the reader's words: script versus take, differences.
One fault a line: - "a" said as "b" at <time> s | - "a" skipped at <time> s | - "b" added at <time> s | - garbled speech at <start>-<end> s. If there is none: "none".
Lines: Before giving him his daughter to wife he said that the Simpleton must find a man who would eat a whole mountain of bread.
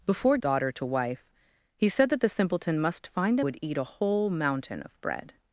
- "giving him his" skipped at 0.4 s
- "man who" skipped at 3.4 s